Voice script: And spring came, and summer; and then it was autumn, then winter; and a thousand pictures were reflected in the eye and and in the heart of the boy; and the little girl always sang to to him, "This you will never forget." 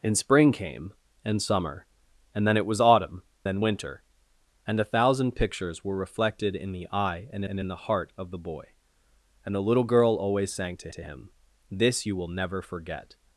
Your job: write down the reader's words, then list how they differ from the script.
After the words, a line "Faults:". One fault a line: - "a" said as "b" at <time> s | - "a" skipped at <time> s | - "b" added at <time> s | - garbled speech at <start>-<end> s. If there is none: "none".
And spring came, and summer; and then it was autumn, then winter; and a thousand pictures were reflected in the eye and and in the heart of the boy; and the little girl always sang to to him, "This you will never forget."
Faults:
none